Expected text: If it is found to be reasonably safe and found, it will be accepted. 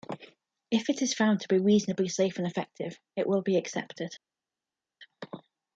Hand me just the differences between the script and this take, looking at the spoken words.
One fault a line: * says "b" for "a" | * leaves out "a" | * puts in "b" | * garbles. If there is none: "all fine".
* says "effective" for "found"